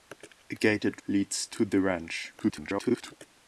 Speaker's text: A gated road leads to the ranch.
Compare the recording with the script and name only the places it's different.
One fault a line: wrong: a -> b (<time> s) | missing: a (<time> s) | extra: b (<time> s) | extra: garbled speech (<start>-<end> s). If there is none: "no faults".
missing: road (1.0 s)
extra: garbled speech (2.4-3.1 s)